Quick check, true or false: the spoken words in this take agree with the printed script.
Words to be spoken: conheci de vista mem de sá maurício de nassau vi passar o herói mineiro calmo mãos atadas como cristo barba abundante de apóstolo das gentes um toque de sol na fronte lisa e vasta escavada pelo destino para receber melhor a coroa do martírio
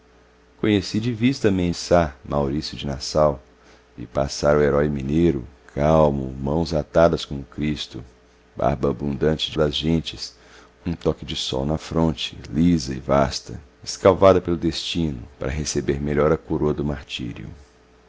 false